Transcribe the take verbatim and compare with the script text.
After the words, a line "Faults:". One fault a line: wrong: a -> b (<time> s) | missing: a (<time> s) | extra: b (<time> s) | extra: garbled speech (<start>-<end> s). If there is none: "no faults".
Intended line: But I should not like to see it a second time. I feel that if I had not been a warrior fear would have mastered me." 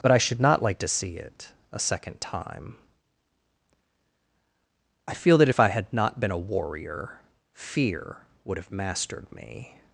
But I should not like to see it a second time. I feel that if I had not been a warrior fear would have mastered me."
Faults:
no faults